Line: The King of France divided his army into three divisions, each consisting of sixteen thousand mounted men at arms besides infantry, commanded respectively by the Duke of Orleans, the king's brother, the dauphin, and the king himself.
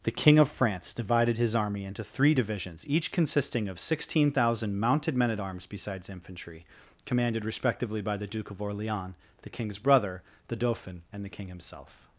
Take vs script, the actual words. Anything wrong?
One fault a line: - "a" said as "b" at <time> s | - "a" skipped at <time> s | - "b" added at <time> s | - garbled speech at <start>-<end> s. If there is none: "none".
none